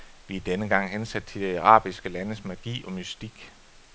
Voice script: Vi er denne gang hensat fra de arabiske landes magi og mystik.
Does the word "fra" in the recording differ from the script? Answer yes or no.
yes